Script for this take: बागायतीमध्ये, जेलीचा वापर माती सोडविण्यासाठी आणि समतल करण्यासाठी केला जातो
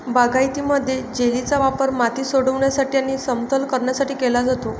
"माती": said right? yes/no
yes